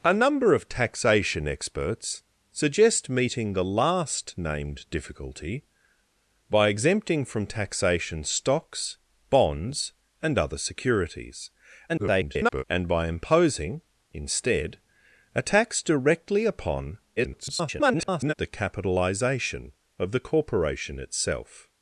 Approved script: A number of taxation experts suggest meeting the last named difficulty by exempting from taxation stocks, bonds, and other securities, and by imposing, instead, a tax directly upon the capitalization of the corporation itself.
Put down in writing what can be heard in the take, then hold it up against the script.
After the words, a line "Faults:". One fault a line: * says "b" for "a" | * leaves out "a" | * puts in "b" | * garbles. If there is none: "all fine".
A number of taxation experts suggest meeting the last named difficulty by exempting from taxation stocks, bonds, and other securities, [garbled] and by imposing, instead, a tax directly upon [garbled] the capitalization of the corporation itself.
Faults:
* garbles
* garbles